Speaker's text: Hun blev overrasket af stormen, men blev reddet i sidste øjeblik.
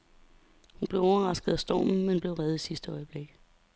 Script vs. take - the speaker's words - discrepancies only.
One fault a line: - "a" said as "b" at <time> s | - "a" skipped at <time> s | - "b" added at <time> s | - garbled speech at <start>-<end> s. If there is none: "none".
none